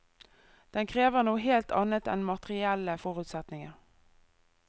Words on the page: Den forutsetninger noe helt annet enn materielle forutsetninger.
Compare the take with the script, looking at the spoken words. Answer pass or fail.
fail